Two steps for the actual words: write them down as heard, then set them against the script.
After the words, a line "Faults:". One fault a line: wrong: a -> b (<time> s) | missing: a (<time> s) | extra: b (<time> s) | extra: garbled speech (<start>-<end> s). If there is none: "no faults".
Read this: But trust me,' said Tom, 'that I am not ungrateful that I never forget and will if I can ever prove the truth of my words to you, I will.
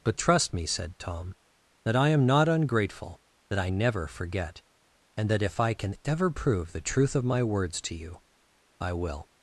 But trust me,' said Tom, 'that I am not ungrateful that I never forget and that if I can ever prove the truth of my words to you, I will.
Faults:
wrong: will -> that (5.3 s)